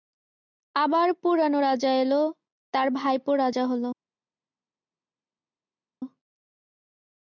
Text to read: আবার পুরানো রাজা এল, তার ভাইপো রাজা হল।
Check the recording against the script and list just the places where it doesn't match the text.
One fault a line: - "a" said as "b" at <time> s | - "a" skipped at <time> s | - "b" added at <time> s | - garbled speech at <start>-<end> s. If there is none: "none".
none